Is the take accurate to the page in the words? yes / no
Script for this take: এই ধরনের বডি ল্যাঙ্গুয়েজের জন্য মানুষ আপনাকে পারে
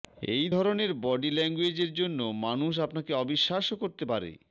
no